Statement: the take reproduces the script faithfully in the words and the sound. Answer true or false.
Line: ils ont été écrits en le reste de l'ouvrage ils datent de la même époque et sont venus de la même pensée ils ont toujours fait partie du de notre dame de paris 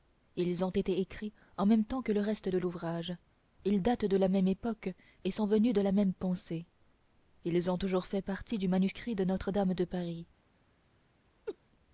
false